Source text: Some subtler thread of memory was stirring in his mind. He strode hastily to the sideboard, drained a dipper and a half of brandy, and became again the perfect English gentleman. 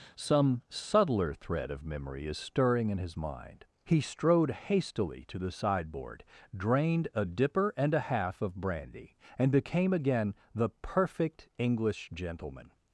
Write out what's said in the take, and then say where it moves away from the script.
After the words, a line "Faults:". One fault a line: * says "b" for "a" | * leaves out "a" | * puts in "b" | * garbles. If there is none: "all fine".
Some subtler thread of memory is stirring in his mind. He strode hastily to the sideboard, drained a dipper and a half of brandy, and became again the perfect English gentleman.
Faults:
* says "is" for "was"